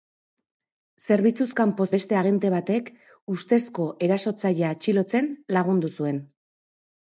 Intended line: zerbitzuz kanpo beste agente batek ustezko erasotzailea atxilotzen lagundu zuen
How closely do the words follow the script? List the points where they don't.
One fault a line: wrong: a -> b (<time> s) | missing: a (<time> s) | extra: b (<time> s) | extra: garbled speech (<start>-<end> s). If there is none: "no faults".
no faults